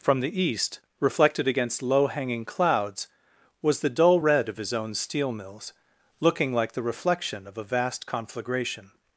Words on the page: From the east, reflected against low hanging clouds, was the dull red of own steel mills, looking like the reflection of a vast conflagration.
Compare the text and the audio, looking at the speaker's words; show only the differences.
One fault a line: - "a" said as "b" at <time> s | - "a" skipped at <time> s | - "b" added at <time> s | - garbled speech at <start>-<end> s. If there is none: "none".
- "his" added at 4.6 s